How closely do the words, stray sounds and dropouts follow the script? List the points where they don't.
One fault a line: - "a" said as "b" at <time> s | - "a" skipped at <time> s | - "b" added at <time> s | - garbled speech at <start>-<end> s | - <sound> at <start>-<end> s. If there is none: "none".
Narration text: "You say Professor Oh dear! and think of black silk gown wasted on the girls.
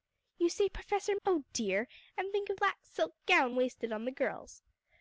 none